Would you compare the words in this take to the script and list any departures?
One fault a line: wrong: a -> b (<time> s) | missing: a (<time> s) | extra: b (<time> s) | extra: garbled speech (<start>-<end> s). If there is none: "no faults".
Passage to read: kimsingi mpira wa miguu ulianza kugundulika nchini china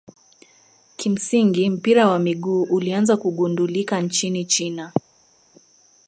no faults